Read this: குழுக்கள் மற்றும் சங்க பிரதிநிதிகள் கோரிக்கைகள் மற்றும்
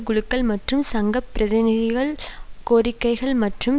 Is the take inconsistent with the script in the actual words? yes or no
no